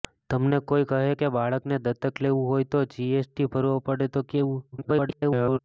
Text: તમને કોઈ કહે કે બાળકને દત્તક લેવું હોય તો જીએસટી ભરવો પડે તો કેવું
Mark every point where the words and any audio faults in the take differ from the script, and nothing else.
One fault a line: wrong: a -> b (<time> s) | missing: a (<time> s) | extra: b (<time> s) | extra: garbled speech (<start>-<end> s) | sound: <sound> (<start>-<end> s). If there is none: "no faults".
extra: garbled speech (4.7-5.6 s)